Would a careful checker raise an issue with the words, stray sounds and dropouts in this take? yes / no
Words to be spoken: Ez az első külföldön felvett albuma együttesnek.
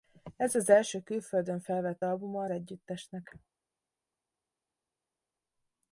no